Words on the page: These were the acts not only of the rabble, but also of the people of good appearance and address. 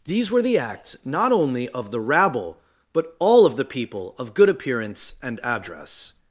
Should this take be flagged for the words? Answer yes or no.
yes